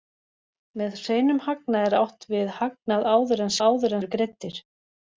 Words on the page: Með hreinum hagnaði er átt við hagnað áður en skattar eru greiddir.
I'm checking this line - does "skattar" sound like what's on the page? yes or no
no